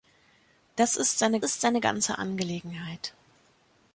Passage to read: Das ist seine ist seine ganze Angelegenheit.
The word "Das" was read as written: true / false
true